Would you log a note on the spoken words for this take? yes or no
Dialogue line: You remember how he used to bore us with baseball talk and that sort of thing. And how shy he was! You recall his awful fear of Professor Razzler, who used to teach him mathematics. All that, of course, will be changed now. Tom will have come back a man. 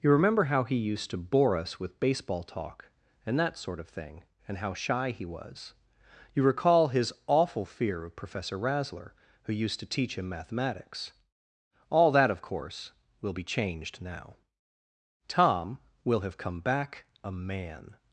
no